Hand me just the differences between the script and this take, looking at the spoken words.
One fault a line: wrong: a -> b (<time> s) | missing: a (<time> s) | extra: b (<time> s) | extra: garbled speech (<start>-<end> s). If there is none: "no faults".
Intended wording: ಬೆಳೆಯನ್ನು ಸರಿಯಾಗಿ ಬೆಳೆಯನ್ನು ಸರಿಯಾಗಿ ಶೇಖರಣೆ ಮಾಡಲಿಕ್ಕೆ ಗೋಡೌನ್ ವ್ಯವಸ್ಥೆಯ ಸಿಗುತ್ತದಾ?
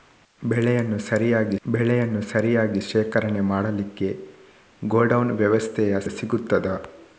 no faults